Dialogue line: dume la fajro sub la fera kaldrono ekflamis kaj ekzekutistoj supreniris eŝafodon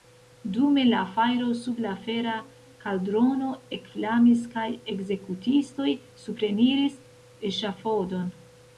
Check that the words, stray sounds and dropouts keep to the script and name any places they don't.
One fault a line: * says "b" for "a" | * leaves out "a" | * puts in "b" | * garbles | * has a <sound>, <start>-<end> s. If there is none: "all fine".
all fine